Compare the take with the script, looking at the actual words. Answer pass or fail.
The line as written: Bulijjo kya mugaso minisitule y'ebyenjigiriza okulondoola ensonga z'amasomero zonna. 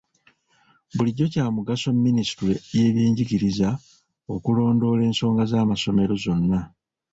pass